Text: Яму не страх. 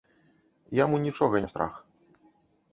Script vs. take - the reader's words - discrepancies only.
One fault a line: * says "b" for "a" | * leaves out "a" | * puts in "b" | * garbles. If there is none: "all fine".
* puts in "нічога"